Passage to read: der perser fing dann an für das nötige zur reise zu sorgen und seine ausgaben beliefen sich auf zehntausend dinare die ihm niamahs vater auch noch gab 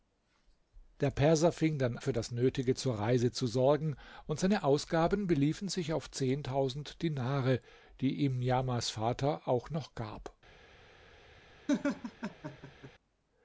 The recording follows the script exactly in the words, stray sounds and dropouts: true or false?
false